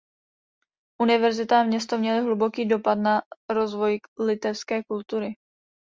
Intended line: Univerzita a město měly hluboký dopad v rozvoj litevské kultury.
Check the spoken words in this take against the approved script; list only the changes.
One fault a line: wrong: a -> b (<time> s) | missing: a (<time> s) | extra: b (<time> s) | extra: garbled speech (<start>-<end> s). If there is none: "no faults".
wrong: v -> na (3.0 s)